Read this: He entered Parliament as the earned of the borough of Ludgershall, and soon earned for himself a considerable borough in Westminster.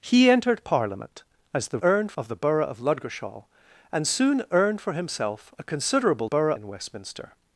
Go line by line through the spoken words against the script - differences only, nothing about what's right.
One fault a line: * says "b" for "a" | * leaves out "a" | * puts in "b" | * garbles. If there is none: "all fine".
all fine